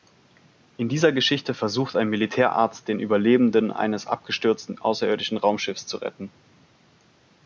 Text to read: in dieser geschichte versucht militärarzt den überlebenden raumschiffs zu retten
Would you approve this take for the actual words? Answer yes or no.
no